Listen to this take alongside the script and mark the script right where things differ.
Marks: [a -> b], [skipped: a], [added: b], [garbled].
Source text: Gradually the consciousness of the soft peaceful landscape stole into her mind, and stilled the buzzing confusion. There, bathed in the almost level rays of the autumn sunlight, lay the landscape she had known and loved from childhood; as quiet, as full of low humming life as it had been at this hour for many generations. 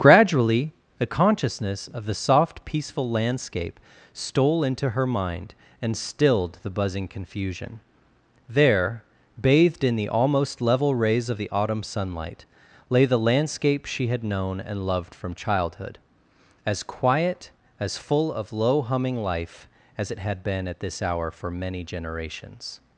Gradually the consciousness of the soft peaceful landscape stole into her mind, and stilled the buzzing confusion. There, bathed in the almost level rays of the autumn sunlight, lay the landscape she had known and loved from childhood; as quiet, as full of low humming life as it had been at this hour for many generations.